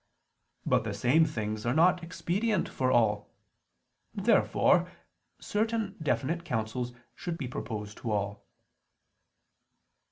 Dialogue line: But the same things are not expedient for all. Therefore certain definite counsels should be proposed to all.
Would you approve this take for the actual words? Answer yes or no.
yes